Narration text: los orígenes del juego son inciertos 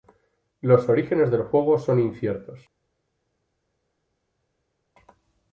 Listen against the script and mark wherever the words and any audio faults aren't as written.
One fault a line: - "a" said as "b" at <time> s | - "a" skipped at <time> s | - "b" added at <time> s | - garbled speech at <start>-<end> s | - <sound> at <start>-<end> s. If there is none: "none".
none